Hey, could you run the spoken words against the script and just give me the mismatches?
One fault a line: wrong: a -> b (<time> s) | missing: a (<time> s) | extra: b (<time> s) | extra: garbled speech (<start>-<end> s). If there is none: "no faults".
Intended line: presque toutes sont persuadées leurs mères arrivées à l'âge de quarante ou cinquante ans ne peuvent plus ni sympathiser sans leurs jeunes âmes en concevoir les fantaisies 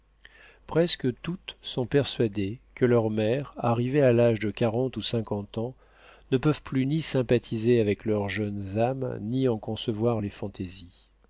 extra: que (2.7 s)
wrong: sans -> avec (7.8 s)
extra: ni (9.2 s)